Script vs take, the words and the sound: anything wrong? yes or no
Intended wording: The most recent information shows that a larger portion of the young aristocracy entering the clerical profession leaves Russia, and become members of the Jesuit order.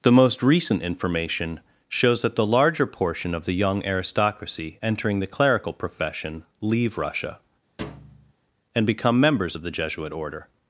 yes